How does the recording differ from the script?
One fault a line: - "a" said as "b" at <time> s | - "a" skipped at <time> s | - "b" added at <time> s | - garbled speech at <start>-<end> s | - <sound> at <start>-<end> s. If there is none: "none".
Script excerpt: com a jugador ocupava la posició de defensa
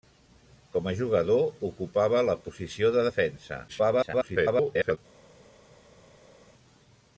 - garbled speech at 3.7-5.0 s